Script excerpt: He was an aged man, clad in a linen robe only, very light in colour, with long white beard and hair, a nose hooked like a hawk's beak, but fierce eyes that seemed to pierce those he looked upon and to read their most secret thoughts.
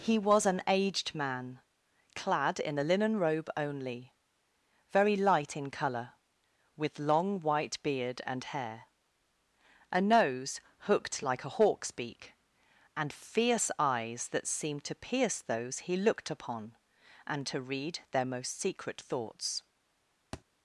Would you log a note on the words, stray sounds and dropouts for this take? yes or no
yes